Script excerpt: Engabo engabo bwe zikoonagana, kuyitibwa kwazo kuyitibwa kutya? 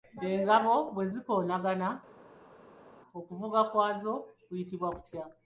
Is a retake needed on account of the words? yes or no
yes